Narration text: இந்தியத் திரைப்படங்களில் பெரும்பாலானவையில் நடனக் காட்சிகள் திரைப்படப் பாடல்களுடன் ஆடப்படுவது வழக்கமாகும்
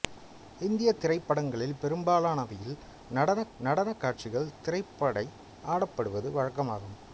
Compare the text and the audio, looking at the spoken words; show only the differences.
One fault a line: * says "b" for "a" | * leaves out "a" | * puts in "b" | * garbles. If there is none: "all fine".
* puts in "நடனக்"
* leaves out "பாடல்களுடன்"